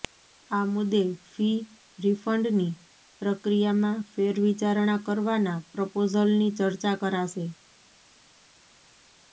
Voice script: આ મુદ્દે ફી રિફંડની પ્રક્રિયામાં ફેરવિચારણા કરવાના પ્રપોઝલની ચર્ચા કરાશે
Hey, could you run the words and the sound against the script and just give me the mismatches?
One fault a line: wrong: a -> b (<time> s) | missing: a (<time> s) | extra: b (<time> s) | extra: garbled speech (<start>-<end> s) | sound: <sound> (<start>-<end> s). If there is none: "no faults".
no faults